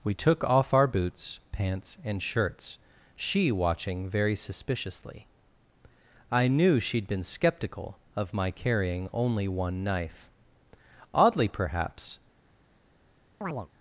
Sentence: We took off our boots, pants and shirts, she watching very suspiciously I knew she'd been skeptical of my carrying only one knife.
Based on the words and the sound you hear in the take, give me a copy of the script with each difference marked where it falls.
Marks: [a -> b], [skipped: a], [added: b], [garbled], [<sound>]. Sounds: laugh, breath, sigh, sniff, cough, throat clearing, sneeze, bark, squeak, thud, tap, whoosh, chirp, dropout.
We took off our boots, pants and shirts, she watching very suspiciously I knew she'd been skeptical of my carrying only one knife. [added: Oddly perhaps] [chirp]